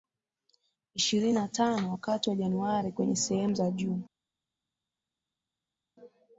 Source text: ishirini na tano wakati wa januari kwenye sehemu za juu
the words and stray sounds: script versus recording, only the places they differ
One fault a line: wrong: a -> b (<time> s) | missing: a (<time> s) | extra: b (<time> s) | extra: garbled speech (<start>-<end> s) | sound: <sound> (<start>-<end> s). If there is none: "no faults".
no faults